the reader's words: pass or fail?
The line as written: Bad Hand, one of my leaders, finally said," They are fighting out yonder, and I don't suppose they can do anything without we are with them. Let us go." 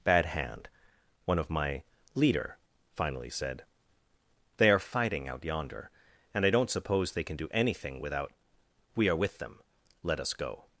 fail